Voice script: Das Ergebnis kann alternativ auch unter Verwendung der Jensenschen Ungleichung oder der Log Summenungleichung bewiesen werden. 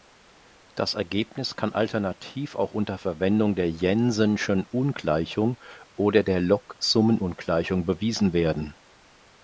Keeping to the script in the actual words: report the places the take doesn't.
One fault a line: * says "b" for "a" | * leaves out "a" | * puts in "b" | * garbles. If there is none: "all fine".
all fine